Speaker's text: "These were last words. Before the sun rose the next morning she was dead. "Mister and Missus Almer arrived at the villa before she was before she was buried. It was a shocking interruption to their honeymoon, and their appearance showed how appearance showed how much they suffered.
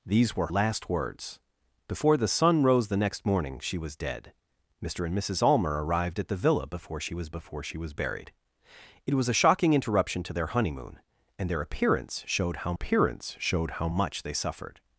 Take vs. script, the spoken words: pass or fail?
pass